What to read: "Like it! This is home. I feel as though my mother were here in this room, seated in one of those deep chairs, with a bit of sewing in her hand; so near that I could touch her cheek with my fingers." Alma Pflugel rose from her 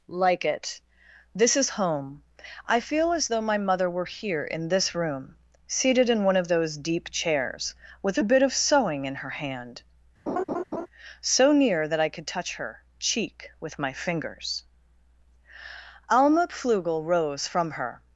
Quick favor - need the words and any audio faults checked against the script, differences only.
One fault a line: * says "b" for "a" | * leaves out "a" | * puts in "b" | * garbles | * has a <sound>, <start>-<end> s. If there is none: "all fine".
* has a laugh, 10.3-10.9 s